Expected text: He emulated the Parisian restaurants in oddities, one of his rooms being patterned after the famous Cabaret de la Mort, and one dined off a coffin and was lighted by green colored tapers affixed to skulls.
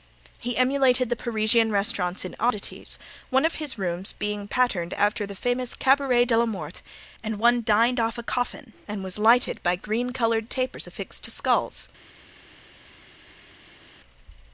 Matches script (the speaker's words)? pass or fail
pass